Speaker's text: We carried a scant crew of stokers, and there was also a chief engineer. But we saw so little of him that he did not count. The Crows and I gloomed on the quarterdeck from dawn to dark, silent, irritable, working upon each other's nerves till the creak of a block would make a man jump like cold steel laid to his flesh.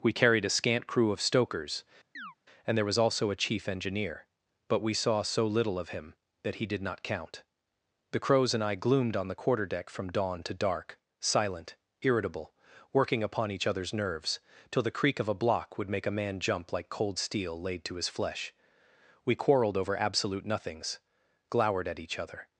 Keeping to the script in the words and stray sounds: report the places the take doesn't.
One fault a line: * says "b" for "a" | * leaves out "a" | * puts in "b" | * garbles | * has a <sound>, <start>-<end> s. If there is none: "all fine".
* has a chirp, 2.1-2.4 s
* puts in "We quarreled over absolute nothings glowered at each other"